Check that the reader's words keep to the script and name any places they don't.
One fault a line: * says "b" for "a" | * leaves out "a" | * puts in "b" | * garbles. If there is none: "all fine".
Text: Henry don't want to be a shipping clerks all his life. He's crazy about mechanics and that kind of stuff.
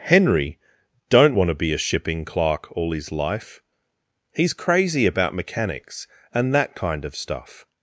* says "clerk" for "clerks"